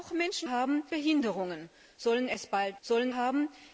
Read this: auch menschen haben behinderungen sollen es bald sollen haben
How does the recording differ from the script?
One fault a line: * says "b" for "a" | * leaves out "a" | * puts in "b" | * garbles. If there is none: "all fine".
all fine